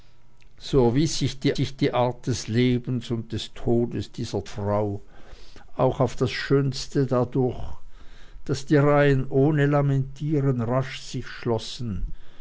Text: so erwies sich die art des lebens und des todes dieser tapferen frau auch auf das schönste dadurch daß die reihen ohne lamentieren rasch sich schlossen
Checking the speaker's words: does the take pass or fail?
fail